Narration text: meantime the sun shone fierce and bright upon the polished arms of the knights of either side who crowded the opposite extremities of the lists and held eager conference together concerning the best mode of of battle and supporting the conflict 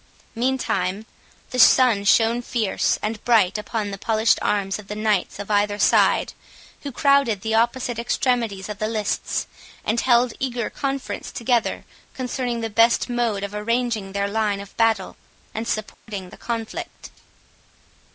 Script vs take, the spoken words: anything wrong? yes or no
yes